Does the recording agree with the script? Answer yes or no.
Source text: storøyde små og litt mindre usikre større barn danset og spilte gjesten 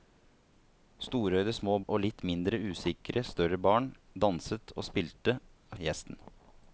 yes